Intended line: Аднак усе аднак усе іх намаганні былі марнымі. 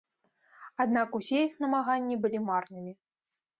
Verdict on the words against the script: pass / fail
fail